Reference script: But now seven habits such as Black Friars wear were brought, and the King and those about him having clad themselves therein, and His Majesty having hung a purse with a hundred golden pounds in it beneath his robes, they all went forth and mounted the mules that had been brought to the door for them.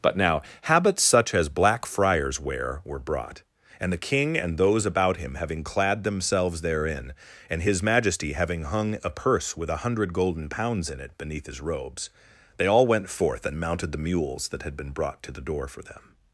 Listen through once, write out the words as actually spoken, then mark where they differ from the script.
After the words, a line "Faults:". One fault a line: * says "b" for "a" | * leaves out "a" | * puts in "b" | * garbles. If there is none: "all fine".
But now habits such as Black Friars wear were brought, and the King and those about him having clad themselves therein, and His Majesty having hung a purse with a hundred golden pounds in it beneath his robes, they all went forth and mounted the mules that had been brought to the door for them.
Faults:
* leaves out "seven"